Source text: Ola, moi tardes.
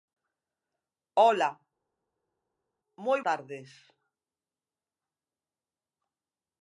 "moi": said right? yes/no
yes